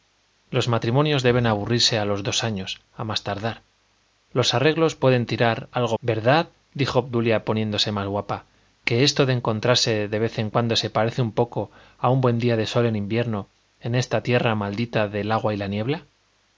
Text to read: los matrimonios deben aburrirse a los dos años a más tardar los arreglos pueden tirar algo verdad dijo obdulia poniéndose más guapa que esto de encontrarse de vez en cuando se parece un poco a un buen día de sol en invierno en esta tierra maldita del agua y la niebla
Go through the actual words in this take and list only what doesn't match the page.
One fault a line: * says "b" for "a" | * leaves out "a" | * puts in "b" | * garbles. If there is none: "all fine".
all fine